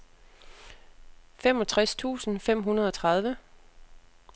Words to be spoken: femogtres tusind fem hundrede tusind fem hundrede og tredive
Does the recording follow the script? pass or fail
fail